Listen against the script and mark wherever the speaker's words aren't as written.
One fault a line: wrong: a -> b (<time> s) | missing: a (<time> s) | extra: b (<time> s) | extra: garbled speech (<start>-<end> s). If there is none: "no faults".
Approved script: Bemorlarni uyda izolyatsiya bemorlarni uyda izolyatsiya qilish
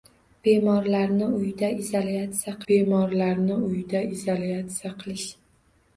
no faults